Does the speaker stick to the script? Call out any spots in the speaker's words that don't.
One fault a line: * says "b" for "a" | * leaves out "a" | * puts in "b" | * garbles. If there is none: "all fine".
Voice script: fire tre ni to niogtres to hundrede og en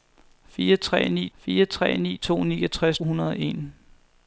* puts in "fire tre ni"
* leaves out "to"